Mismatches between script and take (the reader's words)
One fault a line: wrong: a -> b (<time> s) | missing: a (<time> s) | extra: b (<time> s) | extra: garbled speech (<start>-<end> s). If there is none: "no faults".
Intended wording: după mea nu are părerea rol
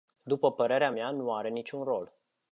extra: părerea (0.5 s)
wrong: părerea -> niciun (1.5 s)